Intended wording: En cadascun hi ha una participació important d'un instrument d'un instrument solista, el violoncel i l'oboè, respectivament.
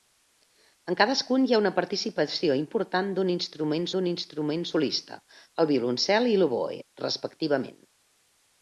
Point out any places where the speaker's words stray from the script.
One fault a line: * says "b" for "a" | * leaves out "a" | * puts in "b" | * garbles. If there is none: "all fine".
all fine